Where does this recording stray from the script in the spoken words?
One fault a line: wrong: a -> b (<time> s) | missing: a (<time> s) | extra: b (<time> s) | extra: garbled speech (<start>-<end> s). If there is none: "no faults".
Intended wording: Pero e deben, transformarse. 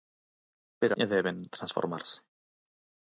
no faults